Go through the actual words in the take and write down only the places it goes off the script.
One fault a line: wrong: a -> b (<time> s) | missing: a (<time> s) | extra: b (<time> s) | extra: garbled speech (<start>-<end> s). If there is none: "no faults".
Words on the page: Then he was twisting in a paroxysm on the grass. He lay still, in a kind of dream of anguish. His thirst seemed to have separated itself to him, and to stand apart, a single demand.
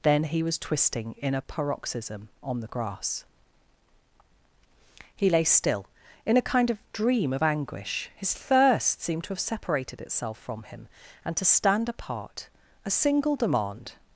wrong: to -> from (10.4 s)